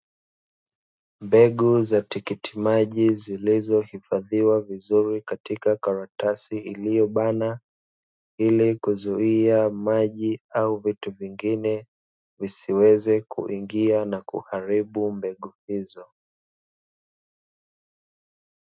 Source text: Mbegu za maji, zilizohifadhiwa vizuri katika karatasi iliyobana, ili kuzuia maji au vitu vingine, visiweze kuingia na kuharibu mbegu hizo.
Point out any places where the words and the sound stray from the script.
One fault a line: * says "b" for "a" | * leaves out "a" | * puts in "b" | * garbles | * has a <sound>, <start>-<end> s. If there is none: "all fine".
* puts in "tikiti"